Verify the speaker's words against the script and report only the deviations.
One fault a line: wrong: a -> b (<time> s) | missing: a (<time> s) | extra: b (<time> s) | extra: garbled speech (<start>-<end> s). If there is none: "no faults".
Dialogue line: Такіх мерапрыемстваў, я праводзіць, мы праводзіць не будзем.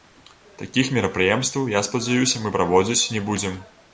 wrong: праводзіць -> спадзяюся (1.9 s)